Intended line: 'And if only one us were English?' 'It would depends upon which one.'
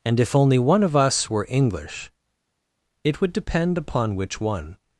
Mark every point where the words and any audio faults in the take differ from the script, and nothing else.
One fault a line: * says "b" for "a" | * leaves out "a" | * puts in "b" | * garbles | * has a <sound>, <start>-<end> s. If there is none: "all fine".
* puts in "of"
* says "depend" for "depends"